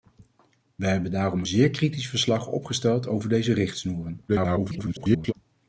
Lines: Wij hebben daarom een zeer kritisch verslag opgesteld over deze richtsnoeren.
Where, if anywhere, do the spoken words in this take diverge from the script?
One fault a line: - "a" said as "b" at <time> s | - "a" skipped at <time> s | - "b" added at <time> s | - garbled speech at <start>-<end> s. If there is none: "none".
- "een" skipped at 1.4 s
- garbled speech at 4.3-5.3 s